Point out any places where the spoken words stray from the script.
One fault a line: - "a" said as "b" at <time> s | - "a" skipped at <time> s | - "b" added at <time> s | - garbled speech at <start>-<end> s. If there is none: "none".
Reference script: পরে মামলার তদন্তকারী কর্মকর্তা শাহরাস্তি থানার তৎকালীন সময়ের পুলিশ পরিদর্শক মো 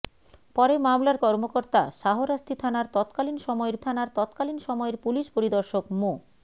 - "তদন্তকারী" skipped at 1.2 s
- "থানার তৎকালীন সময়ের" added at 3.8 s